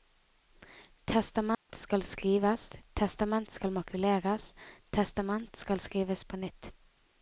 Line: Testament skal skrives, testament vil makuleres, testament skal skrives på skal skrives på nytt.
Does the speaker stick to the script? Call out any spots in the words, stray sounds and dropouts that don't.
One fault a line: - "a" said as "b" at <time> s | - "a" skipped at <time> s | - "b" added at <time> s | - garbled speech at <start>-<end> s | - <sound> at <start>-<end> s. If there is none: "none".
- dropout at 1.5-1.7 s
- "vil" said as "skal" at 3.5 s
- "skal skrives på" skipped at 6.4 s